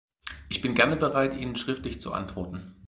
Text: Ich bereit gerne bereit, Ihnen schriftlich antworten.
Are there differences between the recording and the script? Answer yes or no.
yes